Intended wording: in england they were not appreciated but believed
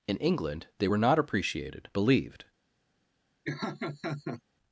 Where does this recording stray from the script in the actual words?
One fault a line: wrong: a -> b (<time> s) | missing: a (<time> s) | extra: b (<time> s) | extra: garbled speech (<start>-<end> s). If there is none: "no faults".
missing: but (1.9 s)